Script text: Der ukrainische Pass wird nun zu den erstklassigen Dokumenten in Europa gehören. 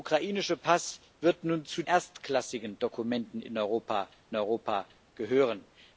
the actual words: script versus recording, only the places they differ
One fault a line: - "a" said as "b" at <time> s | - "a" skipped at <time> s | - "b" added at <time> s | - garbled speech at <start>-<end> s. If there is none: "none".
- "den" skipped at 1.8 s
- "Europa" added at 4.3 s